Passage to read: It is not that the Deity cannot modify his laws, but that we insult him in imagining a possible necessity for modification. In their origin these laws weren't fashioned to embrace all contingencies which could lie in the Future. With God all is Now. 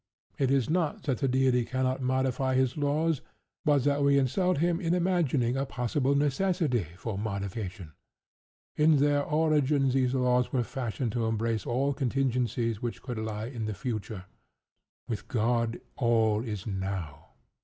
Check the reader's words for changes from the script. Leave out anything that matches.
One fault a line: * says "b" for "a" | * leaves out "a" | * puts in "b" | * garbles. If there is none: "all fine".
* says "were" for "weren't"